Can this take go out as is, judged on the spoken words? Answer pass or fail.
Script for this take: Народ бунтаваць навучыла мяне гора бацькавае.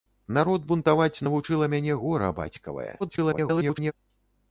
fail